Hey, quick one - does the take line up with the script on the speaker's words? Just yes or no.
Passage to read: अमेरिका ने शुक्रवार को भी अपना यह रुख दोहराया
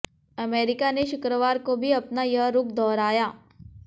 yes